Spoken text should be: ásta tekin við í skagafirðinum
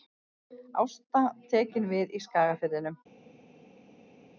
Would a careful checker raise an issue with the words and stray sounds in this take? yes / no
no